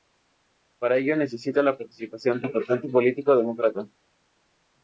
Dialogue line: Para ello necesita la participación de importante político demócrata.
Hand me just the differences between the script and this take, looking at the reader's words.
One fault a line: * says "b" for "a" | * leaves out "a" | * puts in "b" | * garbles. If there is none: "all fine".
all fine